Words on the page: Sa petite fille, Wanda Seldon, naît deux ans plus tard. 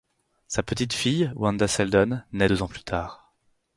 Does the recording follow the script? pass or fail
pass